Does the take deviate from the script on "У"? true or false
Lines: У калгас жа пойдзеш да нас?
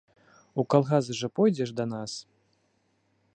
false